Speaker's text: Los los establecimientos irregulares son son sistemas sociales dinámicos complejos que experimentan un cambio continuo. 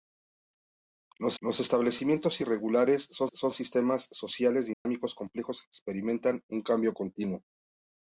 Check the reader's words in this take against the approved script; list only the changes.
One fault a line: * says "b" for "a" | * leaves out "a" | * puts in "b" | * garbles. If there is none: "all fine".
all fine